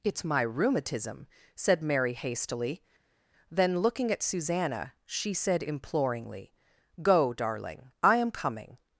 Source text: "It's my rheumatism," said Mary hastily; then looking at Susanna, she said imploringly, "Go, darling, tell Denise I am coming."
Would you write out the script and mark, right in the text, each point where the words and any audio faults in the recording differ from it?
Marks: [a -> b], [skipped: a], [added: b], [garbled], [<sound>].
"It's my rheumatism," said Mary hastily; then looking at Susanna, she said imploringly, "Go, darling, [skipped: tell Denise] I am coming."